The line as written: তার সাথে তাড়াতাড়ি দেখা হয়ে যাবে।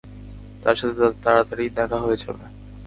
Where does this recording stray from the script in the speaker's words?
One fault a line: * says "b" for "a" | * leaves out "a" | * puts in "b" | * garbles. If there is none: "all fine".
all fine